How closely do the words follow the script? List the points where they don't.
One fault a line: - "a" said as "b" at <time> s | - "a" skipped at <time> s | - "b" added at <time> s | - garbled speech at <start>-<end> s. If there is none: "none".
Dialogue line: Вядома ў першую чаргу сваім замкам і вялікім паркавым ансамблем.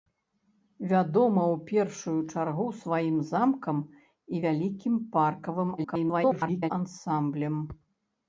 - garbled speech at 5.8-6.7 s